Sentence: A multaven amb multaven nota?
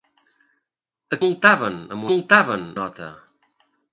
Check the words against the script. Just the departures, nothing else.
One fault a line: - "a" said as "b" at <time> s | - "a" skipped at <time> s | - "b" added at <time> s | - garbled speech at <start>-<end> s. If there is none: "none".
none